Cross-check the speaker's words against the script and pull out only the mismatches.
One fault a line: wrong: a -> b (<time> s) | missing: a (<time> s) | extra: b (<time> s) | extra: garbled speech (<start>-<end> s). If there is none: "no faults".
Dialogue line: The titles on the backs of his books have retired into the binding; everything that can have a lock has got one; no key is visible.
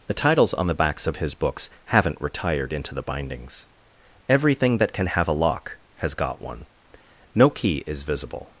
wrong: have -> haven't (1.9 s)
wrong: binding -> bindings (3.0 s)